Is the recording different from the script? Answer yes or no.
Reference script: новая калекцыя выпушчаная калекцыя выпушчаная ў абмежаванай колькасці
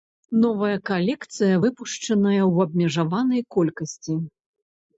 yes